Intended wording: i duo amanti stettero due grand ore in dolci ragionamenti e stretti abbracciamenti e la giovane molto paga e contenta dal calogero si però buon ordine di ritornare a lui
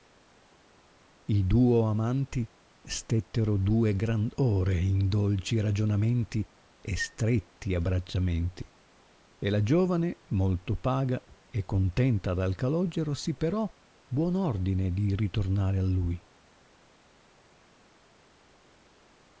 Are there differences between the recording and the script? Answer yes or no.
no